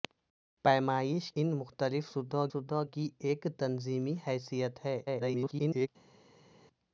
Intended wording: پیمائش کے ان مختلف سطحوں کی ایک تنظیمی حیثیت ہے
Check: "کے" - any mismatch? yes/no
yes